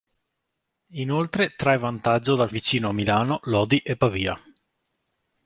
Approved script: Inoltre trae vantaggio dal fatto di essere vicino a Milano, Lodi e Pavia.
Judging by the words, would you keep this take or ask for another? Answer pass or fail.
fail